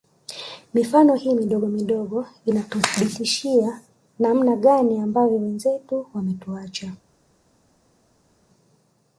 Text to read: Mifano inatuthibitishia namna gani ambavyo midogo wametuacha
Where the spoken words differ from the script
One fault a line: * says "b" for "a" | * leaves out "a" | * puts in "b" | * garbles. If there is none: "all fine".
* puts in "hii midogo midogo"
* says "wenzetu" for "midogo"